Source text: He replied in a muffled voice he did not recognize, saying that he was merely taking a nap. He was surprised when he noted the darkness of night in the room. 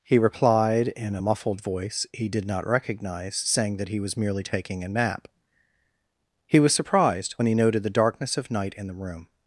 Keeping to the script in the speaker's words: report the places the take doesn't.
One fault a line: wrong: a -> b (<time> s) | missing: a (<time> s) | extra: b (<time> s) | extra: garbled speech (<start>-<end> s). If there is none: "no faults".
no faults